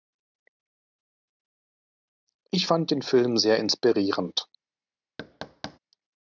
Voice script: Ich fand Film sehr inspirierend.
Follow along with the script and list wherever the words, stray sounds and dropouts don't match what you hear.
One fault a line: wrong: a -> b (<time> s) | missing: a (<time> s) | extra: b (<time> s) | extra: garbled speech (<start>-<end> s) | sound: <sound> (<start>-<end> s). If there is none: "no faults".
extra: den (2.9 s)
sound: thud (5.2-5.8 s)